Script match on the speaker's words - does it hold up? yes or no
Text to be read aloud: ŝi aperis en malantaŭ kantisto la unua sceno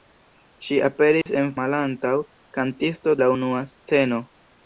yes